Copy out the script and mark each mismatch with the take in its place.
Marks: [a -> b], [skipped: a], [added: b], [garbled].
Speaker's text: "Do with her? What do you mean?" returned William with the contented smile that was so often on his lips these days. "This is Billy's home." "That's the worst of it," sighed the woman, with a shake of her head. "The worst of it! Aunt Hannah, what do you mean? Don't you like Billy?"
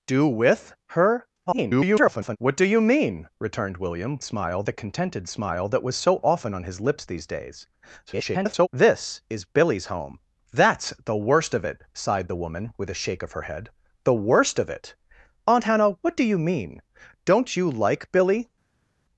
"Do with her? [garbled] What do you mean?" returned William [with -> smile] the contented smile that was so often on his lips these days. [garbled] "This is Billy's home." "That's the worst of it," sighed the woman, with a shake of her head. "The worst of it! Aunt Hannah, what do you mean? Don't you like Billy?"